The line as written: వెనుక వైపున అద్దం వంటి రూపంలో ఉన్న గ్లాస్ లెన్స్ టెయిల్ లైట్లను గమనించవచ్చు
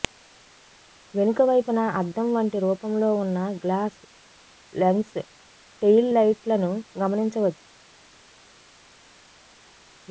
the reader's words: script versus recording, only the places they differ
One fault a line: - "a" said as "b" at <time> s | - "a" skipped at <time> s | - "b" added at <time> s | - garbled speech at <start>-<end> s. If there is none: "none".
none